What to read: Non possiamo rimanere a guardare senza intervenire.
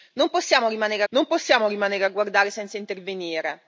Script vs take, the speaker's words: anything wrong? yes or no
yes